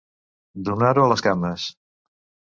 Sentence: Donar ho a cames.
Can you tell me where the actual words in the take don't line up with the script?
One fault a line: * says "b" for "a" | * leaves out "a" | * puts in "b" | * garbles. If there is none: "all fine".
* puts in "les"